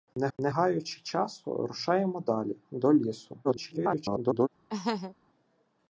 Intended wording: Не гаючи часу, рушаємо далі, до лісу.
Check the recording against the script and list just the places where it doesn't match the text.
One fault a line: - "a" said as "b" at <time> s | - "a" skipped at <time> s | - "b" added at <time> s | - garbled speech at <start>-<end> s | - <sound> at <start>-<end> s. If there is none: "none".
- "не" added at 0.4 s
- garbled speech at 3.4-4.5 s
- laugh at 4.7-5.2 s